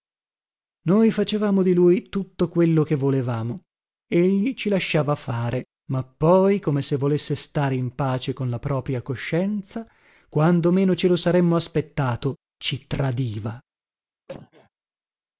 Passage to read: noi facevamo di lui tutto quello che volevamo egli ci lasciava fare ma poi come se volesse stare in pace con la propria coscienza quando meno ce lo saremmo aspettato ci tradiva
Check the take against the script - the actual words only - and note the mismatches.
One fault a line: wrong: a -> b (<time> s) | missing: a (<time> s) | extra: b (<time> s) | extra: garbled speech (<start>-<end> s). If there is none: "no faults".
no faults